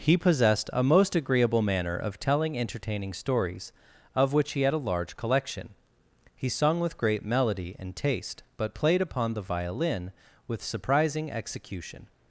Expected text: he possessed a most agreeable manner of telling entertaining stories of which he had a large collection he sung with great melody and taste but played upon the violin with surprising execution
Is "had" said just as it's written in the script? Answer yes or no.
yes